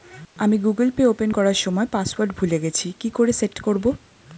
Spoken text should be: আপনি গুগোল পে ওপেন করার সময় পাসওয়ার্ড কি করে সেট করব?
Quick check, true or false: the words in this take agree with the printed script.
false